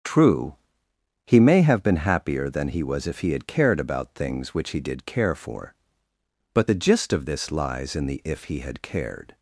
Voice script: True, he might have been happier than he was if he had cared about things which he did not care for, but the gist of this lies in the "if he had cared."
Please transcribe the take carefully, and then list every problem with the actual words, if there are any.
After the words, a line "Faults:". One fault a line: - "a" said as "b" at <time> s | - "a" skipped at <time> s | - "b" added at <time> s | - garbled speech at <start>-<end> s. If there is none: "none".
True, he may have been happier than he was if he had cared about things which he did care for, but the gist of this lies in the "if he had cared."
Faults:
- "might" said as "may" at 1.4 s
- "not" skipped at 5.0 s